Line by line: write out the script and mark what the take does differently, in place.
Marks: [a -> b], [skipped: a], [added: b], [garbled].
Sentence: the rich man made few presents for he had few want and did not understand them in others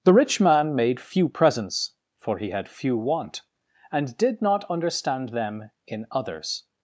the rich man made few presents for he had few want and did not understand them in others